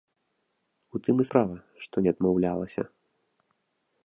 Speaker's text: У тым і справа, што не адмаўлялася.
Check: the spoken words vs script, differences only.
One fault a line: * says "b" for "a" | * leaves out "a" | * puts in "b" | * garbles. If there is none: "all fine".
all fine